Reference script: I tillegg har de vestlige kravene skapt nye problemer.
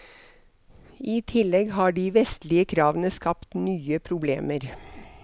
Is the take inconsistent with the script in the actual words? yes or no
no